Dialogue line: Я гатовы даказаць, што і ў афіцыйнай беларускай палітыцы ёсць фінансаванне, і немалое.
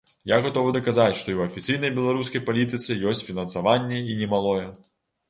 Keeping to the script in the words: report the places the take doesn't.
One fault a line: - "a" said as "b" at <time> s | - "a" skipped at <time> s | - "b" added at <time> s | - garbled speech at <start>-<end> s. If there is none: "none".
none